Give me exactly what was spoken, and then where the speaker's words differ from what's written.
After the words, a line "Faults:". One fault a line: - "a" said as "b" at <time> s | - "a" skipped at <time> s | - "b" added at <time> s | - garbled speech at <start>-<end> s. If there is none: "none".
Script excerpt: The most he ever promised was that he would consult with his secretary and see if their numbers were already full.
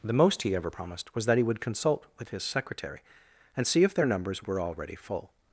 The most he ever promised was that he would consult with his secretary and see if their numbers were already full.
Faults:
none